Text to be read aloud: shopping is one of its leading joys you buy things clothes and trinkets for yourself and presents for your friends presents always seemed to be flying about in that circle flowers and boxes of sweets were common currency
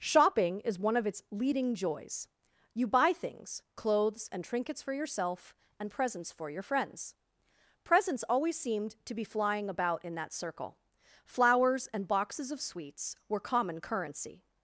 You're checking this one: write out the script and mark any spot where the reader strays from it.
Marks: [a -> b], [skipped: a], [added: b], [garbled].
shopping is one of its leading joys you buy things clothes and trinkets for yourself and presents for your friends presents always seemed to be flying about in that circle flowers and boxes of sweets were common currency